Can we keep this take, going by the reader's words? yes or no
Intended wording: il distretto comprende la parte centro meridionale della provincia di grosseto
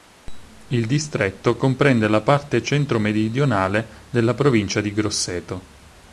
yes